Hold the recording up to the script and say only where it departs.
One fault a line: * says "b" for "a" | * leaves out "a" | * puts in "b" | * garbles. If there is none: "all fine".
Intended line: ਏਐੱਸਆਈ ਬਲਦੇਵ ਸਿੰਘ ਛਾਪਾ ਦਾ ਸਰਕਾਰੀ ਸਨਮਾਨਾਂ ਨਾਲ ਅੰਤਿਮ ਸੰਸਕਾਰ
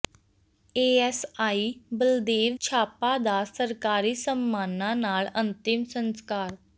* leaves out "ਸਿੰਘ"